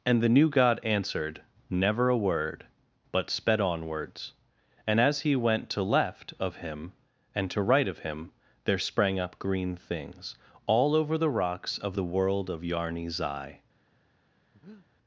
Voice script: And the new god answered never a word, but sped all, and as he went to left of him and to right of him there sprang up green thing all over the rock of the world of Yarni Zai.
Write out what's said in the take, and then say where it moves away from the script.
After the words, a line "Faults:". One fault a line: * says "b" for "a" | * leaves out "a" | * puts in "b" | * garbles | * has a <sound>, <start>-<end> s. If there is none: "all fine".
And the new god answered never a word, but sped onwards, and as he went to left of him and to right of him there sprang up green things all over the rocks of the world of Yarni Zai.
Faults:
* says "onwards" for "all"
* says "things" for "thing"
* says "rocks" for "rock"
* has a breath, 14.5-14.9 s